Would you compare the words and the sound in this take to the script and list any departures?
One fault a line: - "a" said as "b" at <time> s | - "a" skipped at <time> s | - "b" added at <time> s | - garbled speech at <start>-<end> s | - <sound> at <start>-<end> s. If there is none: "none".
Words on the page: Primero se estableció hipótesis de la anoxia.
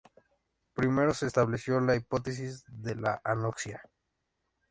- "la" added at 1.8 s